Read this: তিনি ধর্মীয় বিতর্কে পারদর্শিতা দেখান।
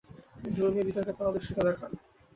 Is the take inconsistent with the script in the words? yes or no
no